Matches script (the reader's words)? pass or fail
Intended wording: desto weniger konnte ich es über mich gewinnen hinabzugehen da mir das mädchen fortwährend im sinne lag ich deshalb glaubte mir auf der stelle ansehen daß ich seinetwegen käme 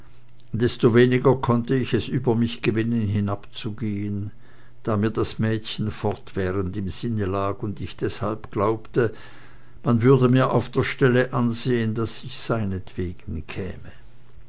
fail